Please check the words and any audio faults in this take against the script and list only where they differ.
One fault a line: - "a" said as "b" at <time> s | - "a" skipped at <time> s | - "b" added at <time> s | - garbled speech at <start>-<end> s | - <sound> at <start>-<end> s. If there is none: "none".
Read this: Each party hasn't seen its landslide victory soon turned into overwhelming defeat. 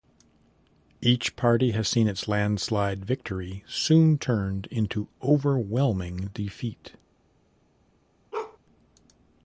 - "hasn't" said as "has" at 1.7 s
- bark at 8.3-8.6 s